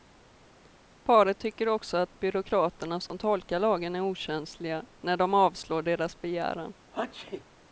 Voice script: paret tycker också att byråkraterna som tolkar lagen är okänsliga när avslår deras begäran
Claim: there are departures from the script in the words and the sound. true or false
true